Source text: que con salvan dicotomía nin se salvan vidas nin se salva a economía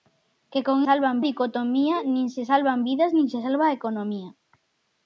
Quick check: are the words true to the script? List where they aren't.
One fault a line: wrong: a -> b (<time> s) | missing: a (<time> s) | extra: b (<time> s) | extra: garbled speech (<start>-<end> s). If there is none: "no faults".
no faults